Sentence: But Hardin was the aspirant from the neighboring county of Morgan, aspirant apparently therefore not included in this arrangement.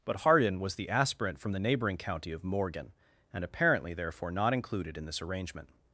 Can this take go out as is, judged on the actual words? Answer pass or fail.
fail